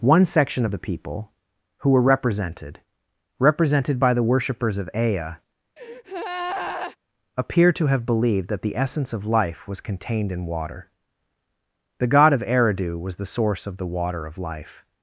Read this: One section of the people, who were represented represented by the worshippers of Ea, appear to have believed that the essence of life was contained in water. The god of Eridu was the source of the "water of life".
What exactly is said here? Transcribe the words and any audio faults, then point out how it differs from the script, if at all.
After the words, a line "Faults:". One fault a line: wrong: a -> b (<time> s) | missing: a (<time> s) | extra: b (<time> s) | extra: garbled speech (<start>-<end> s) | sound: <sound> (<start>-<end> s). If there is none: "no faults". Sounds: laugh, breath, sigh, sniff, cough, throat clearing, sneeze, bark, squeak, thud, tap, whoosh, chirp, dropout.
One section of the people, who were represented represented by the worshippers of Ea, appear to have believed that the essence of life was contained in water. The god of Eridu was the source of the "water of life".
Faults:
sound: breath (5.8-7.0 s)